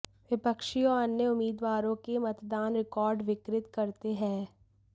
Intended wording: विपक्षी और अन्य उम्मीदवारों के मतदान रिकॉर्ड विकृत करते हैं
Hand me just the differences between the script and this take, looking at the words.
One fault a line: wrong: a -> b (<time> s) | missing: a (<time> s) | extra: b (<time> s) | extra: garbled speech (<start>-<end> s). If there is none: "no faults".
no faults